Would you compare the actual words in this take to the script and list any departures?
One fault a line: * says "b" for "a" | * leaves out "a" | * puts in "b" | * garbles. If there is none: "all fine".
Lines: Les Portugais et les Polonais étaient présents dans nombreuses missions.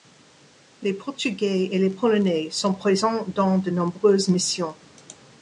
* says "sont" for "étaient"
* puts in "de"